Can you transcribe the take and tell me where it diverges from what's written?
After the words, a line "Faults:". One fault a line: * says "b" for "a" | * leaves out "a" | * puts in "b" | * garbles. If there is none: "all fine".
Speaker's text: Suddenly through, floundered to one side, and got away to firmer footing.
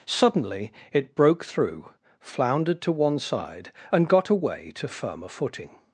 Suddenly it broke through, floundered to one side, and got away to firmer footing.
Faults:
* puts in "it broke"